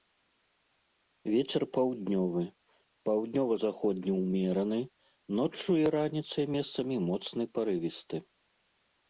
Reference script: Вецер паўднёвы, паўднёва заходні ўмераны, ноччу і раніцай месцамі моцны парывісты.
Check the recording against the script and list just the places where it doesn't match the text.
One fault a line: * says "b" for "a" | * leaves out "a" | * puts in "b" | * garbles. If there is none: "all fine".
all fine